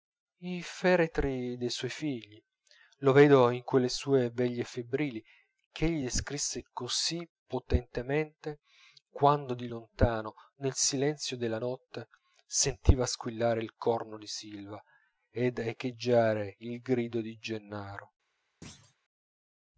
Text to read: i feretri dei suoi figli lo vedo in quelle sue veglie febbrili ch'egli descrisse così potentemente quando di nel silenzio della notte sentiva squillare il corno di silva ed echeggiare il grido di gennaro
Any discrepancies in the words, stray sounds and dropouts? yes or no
yes